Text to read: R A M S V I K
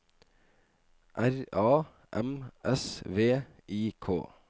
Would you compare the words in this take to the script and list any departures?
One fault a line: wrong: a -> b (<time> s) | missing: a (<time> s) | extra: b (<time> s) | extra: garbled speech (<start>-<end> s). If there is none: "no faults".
no faults